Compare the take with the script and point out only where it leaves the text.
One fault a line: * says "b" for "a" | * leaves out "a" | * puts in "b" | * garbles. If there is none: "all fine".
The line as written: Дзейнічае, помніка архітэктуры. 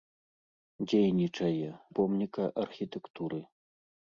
all fine